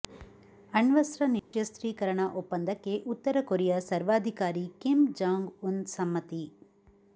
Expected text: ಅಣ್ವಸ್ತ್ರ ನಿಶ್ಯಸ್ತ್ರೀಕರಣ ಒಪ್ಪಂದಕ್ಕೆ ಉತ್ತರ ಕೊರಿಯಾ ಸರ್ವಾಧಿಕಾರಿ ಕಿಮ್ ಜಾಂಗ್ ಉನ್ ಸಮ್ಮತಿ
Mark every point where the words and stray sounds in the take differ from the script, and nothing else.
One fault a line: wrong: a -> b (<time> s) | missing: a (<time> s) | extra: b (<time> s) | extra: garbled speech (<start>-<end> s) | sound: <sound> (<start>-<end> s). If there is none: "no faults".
sound: dropout (1.4-1.5 s)